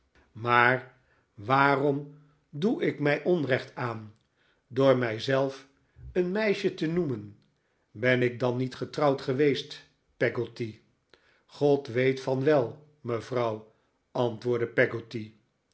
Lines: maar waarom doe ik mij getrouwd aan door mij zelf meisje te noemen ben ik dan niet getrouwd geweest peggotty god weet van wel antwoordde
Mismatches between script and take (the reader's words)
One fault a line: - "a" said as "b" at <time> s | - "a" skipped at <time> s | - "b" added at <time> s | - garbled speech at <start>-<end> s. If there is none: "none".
- "getrouwd" said as "onrecht" at 3.2 s
- "een" added at 6.1 s
- "mevrouw" added at 13.0 s